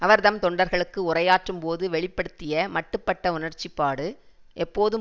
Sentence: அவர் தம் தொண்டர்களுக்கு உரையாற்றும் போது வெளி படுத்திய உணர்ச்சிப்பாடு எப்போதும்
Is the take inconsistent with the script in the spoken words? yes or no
yes